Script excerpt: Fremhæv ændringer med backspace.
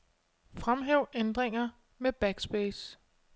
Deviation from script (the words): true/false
false